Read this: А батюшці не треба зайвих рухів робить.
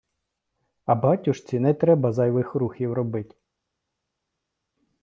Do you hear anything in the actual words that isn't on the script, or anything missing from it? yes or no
no